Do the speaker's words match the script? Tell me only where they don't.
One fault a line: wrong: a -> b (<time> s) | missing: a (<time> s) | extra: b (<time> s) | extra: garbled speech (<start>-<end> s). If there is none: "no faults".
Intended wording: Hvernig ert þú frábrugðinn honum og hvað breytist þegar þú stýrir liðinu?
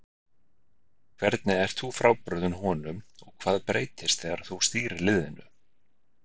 no faults